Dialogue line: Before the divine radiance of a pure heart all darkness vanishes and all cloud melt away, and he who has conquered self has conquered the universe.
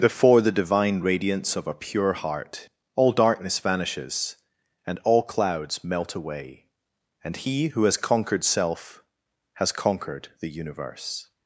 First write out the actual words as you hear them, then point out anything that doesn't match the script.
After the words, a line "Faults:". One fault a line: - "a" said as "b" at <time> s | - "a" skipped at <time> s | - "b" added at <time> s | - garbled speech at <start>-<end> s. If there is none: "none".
Before the divine radiance of a pure heart all darkness vanishes and all clouds melt away, and he who has conquered self has conquered the universe.
Faults:
- "cloud" said as "clouds" at 5.2 s